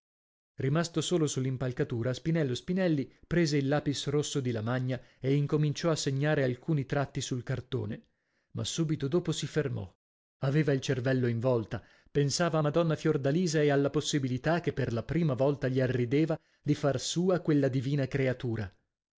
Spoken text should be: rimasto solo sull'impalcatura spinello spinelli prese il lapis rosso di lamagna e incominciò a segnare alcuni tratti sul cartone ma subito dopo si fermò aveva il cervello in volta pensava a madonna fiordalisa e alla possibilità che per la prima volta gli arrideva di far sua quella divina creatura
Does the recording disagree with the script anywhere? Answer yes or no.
no